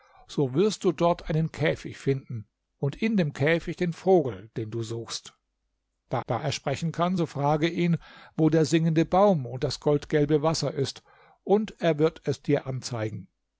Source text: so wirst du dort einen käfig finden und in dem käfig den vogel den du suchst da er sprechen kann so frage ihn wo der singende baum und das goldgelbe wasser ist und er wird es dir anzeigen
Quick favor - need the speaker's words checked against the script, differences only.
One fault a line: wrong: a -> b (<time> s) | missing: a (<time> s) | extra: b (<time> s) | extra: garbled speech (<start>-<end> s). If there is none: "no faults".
extra: da (6.3 s)